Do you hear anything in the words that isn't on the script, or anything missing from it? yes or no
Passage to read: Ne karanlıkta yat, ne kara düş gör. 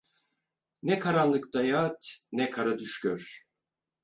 no